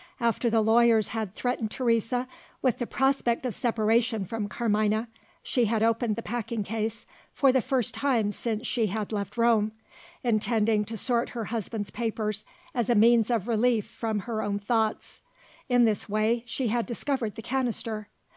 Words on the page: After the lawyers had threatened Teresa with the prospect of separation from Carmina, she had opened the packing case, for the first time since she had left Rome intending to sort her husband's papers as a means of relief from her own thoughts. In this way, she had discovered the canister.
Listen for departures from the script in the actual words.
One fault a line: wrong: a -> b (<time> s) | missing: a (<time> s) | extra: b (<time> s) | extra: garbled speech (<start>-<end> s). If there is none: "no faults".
no faults